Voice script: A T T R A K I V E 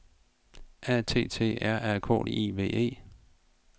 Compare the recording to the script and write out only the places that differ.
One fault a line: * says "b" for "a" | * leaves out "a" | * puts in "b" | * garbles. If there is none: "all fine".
all fine